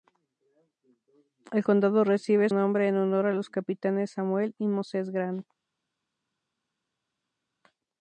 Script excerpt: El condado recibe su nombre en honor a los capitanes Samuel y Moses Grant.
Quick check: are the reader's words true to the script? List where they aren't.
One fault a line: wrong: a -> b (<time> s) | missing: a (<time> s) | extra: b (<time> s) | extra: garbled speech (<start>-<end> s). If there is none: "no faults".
missing: su (2.5 s)